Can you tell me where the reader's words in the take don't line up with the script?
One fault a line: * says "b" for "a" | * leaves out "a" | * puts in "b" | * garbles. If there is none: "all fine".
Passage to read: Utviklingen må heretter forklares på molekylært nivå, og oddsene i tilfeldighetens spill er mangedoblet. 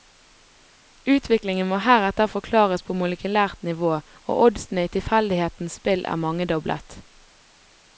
all fine